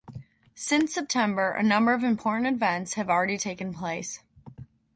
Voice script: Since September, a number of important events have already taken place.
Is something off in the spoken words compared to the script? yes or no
no